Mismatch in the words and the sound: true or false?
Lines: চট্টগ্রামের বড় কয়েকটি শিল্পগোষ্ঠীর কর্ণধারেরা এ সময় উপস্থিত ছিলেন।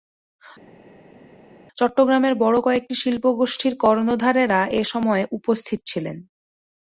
false